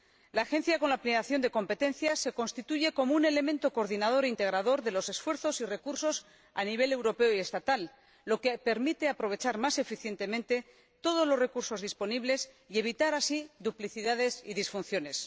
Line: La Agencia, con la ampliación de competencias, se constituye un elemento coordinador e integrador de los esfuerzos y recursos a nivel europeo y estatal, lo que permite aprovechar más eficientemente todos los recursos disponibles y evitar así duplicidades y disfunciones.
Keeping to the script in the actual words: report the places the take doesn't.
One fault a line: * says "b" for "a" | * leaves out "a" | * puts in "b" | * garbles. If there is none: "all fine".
* puts in "como"